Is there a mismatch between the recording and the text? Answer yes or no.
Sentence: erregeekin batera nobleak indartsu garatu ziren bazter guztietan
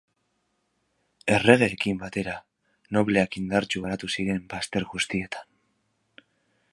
no